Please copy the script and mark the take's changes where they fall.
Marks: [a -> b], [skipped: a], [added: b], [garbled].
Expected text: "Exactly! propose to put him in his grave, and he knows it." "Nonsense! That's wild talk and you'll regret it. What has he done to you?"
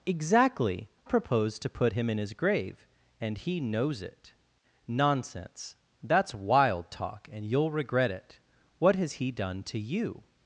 "Exactly! propose to put him in his grave, and he knows it." "Nonsense! That's wild talk and you'll regret it. What has he done to you?"